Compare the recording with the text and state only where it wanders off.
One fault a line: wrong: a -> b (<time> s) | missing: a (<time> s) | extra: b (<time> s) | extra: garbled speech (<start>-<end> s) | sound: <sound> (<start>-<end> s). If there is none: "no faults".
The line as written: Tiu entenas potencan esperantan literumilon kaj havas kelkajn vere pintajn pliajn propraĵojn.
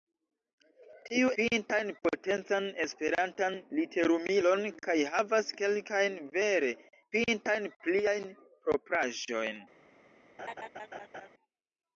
wrong: entenas -> pintajn (1.4 s)
sound: laugh (10.4-11.3 s)